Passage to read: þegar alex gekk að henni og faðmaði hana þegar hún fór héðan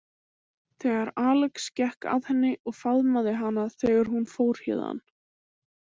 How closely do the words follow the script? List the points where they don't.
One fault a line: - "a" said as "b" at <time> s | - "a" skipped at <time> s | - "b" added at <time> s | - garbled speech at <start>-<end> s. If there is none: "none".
none